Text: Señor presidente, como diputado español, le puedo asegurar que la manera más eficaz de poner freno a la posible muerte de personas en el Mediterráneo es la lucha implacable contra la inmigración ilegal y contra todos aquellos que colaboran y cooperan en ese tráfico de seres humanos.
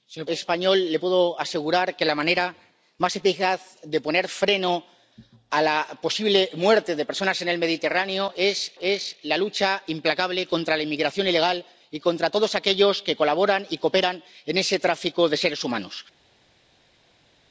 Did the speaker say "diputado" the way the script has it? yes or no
no